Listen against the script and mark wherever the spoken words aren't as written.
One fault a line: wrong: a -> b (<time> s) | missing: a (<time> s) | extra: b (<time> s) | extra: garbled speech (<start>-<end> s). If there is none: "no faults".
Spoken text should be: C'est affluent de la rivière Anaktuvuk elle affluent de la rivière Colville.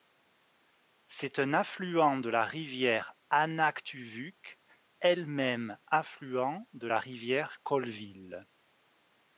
extra: un (1.4 s)
extra: même (5.3 s)